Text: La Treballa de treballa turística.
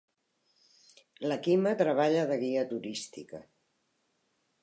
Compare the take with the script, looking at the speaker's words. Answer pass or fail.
fail